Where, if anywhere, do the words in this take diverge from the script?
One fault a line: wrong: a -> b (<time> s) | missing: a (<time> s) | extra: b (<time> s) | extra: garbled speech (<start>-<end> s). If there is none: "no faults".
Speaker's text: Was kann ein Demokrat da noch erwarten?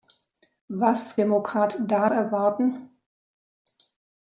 missing: kann ein (1.2 s)
missing: noch (2.1 s)